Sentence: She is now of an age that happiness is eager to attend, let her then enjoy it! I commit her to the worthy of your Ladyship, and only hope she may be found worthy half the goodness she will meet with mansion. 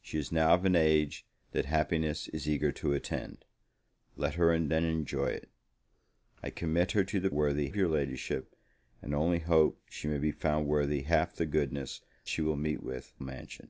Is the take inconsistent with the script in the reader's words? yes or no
no